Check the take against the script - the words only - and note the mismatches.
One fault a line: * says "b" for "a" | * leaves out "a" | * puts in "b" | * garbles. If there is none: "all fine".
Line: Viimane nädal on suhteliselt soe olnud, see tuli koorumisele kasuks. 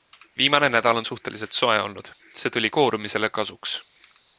all fine